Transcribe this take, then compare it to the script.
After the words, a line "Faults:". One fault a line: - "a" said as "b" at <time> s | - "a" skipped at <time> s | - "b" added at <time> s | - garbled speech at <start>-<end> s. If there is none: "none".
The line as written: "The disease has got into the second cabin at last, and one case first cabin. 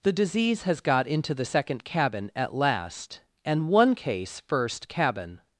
"The disease has got into the second cabin at last, and one case first cabin.
Faults:
none